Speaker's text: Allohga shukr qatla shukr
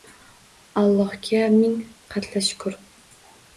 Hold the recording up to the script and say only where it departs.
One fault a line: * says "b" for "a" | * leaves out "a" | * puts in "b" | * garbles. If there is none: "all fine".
* says "ming" for "shukr"